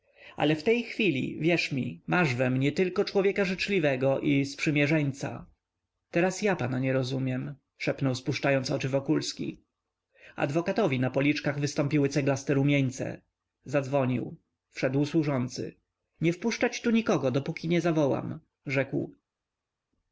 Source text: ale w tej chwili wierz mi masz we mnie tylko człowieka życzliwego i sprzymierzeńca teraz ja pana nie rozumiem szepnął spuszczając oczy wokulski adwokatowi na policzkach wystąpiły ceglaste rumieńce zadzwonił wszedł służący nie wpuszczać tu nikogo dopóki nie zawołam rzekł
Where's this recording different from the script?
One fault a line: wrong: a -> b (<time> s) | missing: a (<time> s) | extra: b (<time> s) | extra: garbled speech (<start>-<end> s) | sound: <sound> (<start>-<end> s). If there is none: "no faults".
no faults